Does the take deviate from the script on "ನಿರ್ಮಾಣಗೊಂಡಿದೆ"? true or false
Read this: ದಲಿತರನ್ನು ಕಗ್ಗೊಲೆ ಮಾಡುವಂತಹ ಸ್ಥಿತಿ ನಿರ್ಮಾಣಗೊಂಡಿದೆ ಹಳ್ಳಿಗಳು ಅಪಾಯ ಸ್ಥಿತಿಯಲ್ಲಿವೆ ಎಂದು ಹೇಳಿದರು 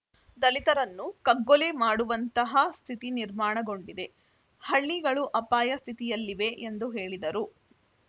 false